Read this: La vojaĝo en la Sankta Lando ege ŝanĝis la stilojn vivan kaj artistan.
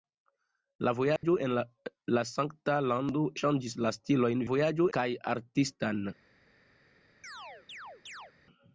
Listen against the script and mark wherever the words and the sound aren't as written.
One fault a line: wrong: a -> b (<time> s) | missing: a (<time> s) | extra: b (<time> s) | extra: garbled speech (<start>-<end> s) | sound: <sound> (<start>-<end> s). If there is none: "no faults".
sound: dropout (1.2-1.2 s)
missing: ege (3.2 s)
wrong: vivan -> vojaĝo (4.5 s)
sound: chirp (7.2-8.3 s)